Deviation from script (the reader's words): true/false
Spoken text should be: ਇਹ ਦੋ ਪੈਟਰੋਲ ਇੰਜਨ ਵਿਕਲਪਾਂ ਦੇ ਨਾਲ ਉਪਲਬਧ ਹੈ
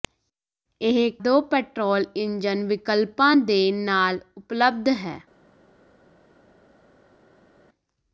false